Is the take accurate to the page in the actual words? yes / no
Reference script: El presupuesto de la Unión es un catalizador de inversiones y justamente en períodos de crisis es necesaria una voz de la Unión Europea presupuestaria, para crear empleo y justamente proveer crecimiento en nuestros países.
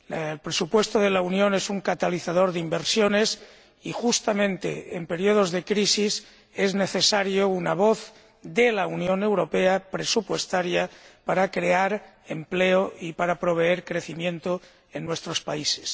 no